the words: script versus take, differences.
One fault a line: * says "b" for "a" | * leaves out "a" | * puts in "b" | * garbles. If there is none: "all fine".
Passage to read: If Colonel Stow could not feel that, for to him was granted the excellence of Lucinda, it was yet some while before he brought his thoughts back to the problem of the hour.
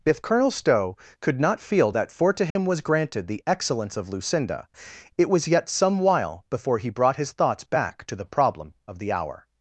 all fine